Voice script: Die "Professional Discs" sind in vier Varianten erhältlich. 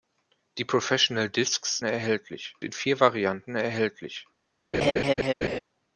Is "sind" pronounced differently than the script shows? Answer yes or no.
yes